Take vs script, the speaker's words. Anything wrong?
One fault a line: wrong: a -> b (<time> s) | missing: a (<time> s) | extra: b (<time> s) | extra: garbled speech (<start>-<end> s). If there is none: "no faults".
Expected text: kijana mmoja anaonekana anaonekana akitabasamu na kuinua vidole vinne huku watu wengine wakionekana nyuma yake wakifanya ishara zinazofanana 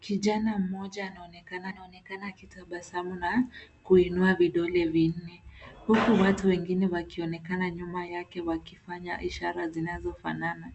no faults